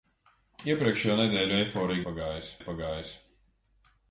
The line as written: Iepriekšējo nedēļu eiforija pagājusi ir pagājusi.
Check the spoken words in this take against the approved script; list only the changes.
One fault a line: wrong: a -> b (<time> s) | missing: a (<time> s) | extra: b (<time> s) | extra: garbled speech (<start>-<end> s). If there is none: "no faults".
no faults